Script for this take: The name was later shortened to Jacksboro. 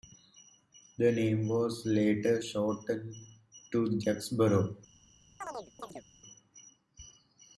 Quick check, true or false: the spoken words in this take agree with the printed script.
true